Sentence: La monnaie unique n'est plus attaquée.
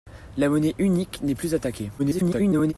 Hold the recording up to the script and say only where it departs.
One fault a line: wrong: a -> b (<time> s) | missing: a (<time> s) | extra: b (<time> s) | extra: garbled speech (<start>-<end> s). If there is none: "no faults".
extra: garbled speech (2.0-2.7 s)